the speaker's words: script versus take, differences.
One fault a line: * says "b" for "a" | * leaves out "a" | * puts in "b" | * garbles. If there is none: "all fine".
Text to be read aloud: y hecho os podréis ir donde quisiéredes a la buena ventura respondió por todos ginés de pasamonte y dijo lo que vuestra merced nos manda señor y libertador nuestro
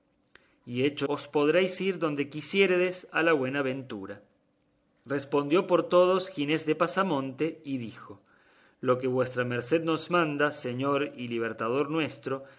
all fine